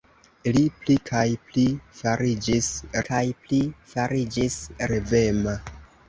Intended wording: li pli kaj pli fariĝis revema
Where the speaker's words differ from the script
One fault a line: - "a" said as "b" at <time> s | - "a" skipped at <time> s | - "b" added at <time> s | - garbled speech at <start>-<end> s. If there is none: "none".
- "kaj pli fariĝis" added at 3.1 s